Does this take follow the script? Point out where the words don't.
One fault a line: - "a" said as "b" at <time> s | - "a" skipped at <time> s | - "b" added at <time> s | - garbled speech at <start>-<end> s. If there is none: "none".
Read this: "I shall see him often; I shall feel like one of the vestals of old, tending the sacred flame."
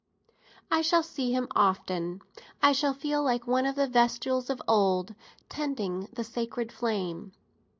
none